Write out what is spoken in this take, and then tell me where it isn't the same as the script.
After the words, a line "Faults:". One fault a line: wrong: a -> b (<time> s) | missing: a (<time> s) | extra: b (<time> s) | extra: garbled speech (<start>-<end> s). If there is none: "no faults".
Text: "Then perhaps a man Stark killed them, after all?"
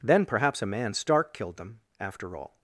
"Then perhaps a man Stark killed them, after all?"
Faults:
no faults